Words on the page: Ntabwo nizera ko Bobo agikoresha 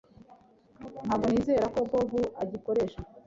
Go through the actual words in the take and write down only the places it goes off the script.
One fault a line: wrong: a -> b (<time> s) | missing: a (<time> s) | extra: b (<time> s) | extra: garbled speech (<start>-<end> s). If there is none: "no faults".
no faults